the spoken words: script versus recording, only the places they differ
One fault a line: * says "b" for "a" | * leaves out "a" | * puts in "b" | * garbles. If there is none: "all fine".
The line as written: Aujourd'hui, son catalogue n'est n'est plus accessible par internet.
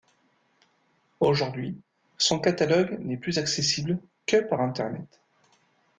* leaves out "n'est"
* puts in "que"